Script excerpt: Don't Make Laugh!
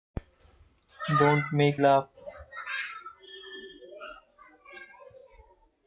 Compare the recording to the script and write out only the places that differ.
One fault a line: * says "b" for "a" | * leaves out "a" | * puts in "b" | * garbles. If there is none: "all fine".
all fine